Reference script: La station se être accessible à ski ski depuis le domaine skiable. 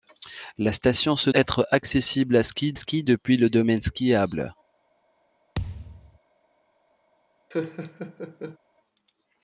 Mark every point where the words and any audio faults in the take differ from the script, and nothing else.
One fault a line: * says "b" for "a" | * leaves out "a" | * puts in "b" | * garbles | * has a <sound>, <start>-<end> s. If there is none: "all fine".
* has a thud, 5.5-6.2 s
* has a laugh, 7.5-8.6 s